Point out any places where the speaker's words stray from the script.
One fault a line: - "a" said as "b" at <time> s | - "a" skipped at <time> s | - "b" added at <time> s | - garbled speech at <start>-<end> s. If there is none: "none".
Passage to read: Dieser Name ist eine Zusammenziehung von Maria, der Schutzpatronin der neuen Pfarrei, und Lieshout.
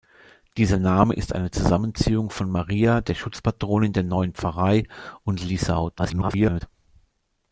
- garbled speech at 6.0-6.6 s